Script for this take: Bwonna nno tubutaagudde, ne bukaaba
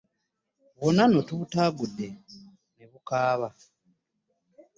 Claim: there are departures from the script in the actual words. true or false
false